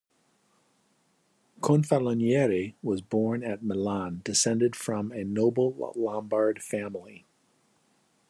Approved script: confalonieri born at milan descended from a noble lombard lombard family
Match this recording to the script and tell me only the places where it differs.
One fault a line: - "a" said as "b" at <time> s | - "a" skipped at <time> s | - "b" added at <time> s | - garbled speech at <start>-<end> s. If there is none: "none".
- "was" added at 2.8 s
- "lombard" skipped at 6.6 s